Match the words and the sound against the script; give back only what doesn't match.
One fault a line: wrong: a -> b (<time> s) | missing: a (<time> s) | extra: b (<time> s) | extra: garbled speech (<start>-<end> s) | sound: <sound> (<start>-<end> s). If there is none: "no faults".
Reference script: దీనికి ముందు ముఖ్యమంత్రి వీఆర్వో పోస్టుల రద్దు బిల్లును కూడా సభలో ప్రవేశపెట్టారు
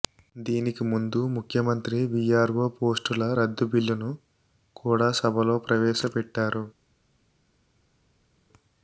no faults